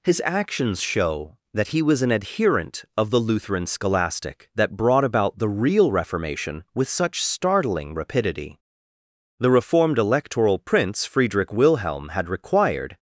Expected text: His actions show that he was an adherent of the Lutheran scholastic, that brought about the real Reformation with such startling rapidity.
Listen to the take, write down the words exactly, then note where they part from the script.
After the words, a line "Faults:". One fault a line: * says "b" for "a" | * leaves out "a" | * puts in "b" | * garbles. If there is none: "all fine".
His actions show that he was an adherent of the Lutheran scholastic, that brought about the real Reformation with such startling rapidity. The reformed Electoral Prince Friedrich Wilhelm had required
Faults:
* puts in "The reformed Electoral Prince Friedrich Wilhelm had required"